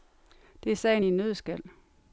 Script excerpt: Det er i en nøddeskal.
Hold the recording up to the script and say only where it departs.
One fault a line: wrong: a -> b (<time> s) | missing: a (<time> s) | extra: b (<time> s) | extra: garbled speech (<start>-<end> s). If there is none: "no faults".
extra: sagen (0.8 s)